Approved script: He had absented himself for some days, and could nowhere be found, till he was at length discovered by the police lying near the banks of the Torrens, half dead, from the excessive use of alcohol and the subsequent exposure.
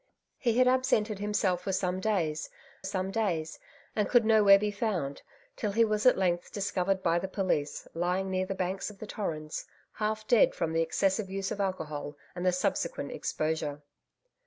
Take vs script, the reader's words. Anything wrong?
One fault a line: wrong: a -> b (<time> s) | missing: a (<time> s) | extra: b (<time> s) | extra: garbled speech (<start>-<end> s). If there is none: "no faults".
extra: some days (2.8 s)